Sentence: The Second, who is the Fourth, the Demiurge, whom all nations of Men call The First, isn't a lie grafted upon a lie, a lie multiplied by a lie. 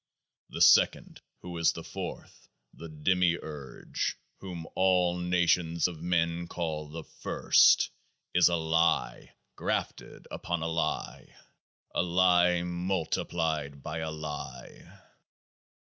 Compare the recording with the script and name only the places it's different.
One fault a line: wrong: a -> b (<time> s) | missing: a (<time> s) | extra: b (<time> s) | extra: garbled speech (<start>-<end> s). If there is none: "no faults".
wrong: isn't -> is (8.3 s)